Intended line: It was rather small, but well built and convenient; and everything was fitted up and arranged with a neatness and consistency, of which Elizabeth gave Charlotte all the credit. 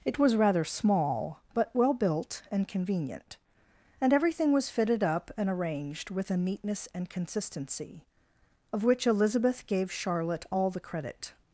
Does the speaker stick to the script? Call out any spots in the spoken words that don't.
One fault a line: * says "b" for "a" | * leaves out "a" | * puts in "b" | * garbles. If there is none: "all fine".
all fine